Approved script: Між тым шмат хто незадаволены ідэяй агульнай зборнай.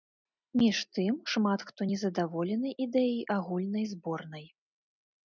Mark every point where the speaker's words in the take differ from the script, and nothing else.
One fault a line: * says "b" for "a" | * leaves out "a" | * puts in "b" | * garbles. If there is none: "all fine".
all fine